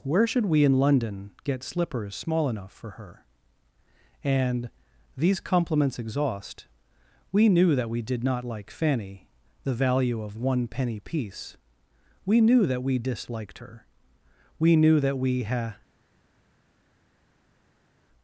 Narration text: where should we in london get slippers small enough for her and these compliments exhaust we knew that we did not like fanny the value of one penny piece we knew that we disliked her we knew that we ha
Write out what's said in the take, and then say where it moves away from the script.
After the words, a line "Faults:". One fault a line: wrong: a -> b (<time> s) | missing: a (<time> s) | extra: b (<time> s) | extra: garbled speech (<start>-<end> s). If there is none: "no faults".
where should we in london get slippers small enough for her and these compliments exhaust we knew that we did not like fanny the value of one penny piece we knew that we disliked her we knew that we ha
Faults:
no faults